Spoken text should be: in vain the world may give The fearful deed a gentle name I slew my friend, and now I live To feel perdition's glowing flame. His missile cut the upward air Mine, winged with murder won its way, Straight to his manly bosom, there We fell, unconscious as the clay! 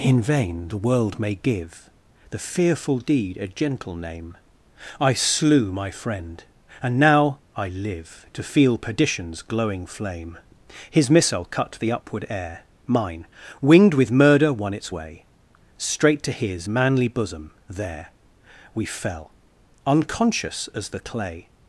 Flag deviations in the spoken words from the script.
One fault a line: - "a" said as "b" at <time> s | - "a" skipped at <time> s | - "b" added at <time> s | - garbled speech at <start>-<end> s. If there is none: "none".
none